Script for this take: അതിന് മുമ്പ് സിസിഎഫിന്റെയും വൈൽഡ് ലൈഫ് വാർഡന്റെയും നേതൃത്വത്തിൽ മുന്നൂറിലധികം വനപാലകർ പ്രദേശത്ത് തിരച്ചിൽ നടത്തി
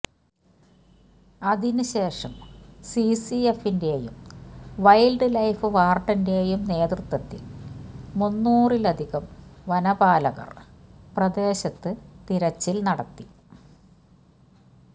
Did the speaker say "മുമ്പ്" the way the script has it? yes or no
no